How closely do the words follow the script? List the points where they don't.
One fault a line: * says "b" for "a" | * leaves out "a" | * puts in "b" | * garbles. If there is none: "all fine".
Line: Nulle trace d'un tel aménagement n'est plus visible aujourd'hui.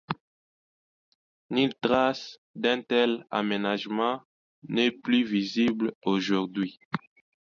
all fine